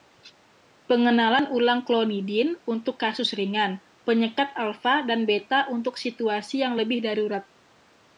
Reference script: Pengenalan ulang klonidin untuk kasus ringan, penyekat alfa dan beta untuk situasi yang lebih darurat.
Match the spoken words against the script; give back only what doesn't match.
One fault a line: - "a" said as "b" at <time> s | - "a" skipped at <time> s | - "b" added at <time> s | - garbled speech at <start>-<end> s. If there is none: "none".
none